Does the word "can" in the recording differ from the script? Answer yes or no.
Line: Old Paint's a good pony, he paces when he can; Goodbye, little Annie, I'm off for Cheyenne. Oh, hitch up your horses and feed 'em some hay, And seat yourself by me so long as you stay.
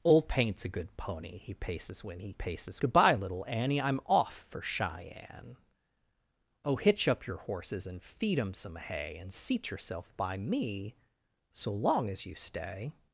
yes